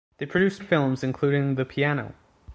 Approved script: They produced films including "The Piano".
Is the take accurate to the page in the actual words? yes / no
yes